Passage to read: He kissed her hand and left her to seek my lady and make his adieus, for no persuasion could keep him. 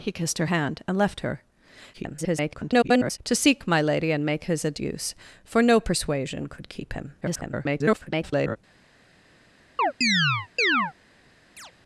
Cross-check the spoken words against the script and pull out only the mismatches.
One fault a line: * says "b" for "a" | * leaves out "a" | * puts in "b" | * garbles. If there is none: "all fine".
* garbles
* garbles